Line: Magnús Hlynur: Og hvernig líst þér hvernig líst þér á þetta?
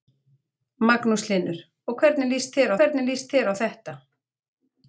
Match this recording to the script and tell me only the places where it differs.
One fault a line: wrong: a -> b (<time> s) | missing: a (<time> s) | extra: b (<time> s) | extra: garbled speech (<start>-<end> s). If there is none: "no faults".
no faults